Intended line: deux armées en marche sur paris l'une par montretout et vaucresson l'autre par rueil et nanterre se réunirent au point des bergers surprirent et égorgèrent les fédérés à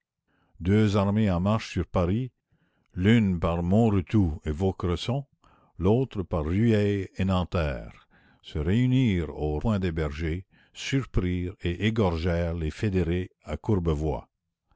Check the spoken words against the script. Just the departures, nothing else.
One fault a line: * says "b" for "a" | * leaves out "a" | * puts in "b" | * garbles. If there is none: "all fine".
all fine